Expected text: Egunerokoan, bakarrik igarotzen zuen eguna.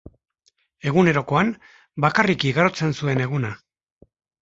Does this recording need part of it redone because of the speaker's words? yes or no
no